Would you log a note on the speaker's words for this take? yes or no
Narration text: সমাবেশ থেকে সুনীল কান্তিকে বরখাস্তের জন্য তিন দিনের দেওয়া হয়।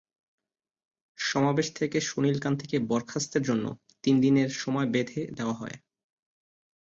yes